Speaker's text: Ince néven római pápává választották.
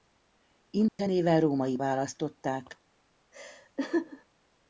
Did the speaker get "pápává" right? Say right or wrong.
wrong